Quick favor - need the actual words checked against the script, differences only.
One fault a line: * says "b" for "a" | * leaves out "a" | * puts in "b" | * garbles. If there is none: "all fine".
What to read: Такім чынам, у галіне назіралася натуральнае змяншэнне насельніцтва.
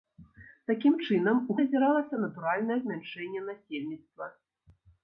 * leaves out "галіне"